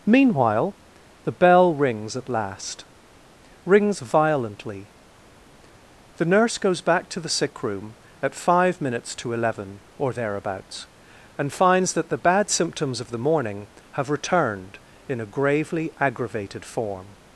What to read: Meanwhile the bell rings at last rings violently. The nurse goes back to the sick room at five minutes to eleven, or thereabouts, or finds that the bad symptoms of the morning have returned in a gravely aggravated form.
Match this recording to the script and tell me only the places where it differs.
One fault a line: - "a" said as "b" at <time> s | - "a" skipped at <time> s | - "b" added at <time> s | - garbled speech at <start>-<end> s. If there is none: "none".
- "or" said as "and" at 11.4 s